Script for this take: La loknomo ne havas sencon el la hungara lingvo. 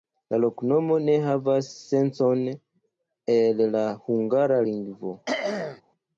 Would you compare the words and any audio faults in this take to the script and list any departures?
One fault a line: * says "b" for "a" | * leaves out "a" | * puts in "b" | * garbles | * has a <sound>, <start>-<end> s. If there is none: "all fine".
* has a throat clearing, 5.3-5.8 s